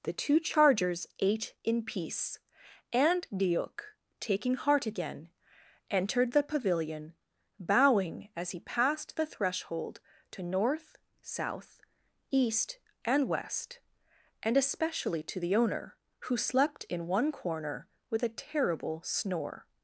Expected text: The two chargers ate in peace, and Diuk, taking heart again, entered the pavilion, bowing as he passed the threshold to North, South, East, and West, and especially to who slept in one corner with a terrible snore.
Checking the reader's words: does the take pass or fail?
fail